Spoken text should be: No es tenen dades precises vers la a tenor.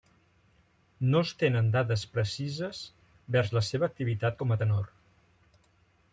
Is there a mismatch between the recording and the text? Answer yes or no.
yes